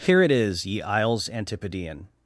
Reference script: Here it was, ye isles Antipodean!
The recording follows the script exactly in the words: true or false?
false